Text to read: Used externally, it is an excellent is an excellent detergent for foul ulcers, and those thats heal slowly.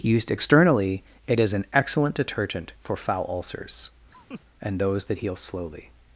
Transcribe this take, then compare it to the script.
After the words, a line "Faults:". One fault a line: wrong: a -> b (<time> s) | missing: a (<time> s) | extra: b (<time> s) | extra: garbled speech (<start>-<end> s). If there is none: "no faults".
Used externally, it is an excellent detergent for foul ulcers, and those that heal slowly.
Faults:
missing: is an excellent (2.1 s)
wrong: thats -> that (5.1 s)